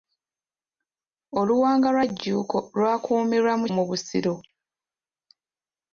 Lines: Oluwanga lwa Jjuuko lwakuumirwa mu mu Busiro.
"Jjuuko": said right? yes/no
yes